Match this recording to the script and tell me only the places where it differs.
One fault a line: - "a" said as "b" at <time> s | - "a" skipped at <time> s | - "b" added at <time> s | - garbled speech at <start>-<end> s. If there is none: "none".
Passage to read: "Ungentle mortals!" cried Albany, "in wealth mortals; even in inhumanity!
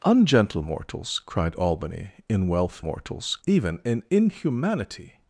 none